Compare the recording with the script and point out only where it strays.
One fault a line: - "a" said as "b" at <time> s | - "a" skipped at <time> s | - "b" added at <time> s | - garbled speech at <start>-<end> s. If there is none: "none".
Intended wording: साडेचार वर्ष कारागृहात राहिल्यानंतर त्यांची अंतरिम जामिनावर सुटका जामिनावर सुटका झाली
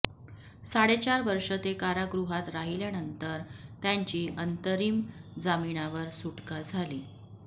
- "ते" added at 1.6 s
- "जामिनावर सुटका" skipped at 6.6 s